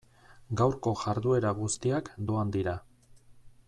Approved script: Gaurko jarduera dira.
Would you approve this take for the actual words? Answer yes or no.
no